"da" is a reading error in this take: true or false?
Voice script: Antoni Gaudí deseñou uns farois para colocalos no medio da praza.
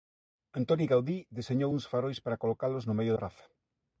true